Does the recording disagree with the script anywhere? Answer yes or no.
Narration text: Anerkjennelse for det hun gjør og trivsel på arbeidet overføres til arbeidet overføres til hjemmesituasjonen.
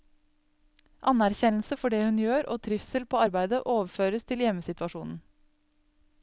yes